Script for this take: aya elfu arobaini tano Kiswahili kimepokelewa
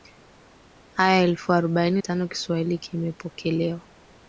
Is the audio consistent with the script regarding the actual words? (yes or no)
yes